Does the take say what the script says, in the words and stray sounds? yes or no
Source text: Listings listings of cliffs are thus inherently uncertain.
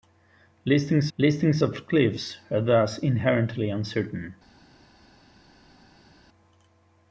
yes